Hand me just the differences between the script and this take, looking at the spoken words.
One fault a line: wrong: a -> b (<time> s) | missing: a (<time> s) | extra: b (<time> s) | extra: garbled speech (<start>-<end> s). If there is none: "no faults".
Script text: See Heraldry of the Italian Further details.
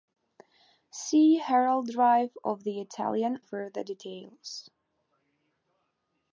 no faults